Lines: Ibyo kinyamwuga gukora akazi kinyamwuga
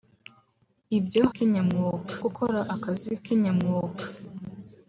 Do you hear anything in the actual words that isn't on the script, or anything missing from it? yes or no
no